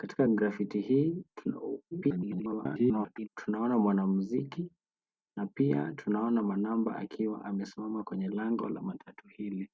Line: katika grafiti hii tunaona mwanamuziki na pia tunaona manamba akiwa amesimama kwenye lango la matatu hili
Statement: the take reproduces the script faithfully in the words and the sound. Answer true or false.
false